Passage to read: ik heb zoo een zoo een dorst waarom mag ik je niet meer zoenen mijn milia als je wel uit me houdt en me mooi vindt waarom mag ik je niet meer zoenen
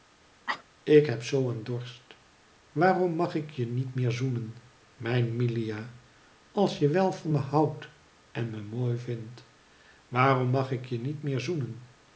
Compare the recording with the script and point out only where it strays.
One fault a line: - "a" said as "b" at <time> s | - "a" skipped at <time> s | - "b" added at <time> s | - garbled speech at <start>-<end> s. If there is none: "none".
- "zoo een" skipped at 1.6 s
- "uit" said as "van" at 7.1 s